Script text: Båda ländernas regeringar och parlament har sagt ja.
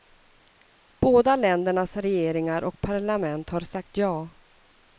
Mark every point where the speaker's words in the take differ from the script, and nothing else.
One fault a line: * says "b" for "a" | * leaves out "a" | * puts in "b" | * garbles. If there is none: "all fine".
all fine